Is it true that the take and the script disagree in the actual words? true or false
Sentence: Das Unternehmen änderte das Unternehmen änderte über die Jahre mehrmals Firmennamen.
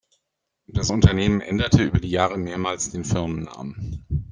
true